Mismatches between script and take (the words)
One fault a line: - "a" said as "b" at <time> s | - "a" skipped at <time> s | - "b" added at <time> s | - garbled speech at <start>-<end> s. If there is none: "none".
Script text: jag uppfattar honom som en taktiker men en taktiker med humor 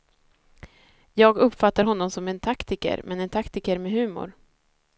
none